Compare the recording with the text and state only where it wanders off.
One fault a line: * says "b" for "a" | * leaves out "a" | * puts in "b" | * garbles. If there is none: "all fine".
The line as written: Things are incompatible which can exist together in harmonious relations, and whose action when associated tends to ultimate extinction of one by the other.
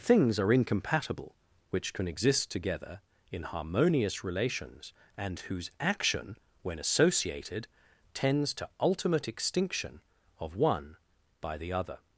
all fine